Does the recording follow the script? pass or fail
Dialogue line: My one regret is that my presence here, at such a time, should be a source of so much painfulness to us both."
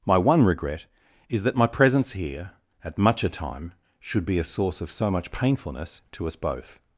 fail